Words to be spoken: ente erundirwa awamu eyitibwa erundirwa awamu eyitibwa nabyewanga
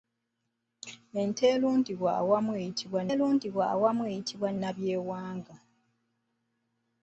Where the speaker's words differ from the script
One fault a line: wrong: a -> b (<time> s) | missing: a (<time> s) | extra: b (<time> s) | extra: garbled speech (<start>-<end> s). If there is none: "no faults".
no faults